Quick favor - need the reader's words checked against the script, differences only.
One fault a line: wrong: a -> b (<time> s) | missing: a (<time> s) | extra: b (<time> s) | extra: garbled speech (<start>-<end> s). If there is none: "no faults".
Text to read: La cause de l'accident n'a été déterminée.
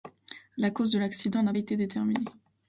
no faults